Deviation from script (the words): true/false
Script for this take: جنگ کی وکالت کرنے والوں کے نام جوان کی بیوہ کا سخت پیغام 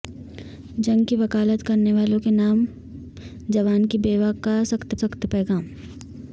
true